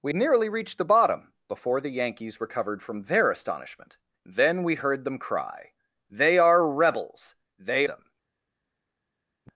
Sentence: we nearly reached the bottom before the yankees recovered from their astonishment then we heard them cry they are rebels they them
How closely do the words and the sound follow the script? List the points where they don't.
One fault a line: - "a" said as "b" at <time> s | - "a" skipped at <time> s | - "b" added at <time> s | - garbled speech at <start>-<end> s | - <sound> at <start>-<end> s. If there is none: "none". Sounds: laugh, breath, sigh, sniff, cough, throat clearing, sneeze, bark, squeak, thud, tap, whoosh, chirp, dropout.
none